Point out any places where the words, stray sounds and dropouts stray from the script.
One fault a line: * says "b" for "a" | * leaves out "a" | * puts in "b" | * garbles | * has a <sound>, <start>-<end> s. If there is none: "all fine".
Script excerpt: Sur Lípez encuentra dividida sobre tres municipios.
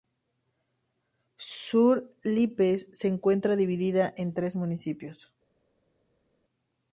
* puts in "se"
* says "en" for "sobre"